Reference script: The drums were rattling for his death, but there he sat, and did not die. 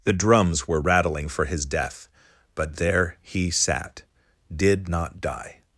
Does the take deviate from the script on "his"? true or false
false